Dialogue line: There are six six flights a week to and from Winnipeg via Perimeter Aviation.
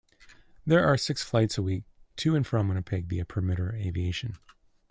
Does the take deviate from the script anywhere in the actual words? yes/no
yes